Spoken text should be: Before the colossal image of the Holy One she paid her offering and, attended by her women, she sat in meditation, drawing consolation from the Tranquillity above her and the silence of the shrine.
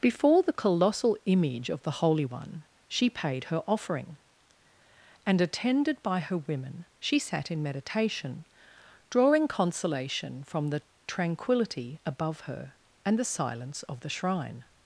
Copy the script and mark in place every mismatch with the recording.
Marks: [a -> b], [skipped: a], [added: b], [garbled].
Before the colossal image of the Holy One she paid her offering and, attended by her women, she sat in meditation, drawing consolation from the Tranquillity above her and the silence of the shrine.